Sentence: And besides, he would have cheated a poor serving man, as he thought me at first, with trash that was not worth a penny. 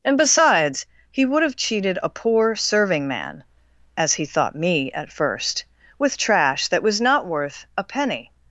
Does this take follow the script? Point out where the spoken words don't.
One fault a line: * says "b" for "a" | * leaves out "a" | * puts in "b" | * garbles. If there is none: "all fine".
all fine